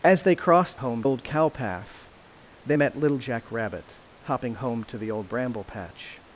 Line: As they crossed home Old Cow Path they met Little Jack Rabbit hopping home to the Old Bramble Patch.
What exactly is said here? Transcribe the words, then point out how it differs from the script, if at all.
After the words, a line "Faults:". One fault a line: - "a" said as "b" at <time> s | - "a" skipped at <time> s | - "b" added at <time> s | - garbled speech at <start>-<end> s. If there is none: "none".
As they crossed home Old Cow Path they met Little Jack Rabbit hopping home to the Old Bramble Patch.
Faults:
none